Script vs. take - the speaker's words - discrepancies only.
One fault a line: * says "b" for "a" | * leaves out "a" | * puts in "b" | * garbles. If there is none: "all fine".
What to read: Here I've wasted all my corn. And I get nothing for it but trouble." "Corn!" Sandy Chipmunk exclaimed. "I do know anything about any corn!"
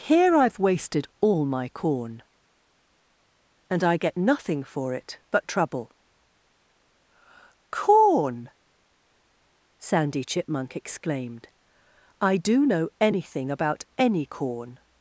all fine